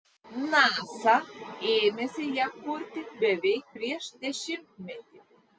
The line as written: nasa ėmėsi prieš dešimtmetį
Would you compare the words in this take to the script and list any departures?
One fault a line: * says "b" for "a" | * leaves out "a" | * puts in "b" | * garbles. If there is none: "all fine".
* puts in "ją kurti beveik"